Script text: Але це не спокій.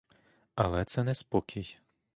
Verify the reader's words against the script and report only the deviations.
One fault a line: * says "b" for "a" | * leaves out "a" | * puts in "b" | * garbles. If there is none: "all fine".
all fine